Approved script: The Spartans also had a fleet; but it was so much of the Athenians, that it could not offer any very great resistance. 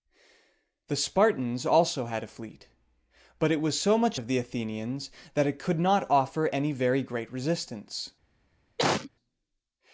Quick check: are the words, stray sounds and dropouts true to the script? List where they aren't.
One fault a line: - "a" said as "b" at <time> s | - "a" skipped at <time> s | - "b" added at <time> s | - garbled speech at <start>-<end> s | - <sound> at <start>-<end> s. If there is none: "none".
- cough at 8.8-9.1 s